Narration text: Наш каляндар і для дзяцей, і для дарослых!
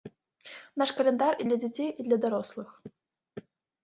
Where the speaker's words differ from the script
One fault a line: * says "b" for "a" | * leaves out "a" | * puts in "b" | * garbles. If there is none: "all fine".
all fine